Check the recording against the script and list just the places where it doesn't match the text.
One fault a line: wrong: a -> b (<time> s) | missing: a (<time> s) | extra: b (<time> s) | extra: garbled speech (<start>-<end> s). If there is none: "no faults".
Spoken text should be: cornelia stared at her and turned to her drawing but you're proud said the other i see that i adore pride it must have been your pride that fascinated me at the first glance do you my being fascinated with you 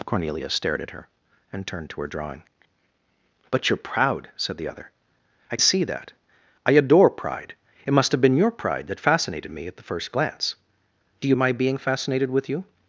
no faults